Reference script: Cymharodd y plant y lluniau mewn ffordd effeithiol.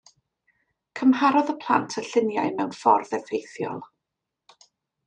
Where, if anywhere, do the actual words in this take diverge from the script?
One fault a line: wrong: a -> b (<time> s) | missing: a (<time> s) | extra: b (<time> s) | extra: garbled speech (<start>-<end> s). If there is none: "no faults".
no faults